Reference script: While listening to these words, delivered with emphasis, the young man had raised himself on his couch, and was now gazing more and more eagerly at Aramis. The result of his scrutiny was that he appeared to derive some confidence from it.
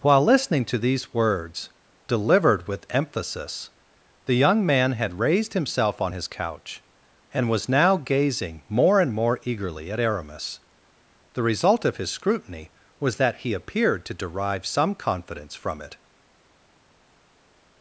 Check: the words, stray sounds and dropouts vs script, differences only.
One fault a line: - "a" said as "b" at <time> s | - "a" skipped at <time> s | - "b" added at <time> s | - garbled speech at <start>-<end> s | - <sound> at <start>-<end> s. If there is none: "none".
none